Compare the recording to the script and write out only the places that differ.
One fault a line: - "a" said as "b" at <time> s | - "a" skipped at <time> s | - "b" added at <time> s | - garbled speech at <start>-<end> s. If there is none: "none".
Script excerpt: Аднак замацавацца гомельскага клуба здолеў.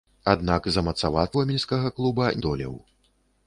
none